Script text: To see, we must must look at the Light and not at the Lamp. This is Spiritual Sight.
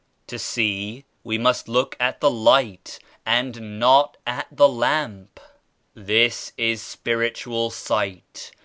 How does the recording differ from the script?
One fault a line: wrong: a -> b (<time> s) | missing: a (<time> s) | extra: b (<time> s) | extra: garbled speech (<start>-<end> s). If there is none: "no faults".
missing: must (1.7 s)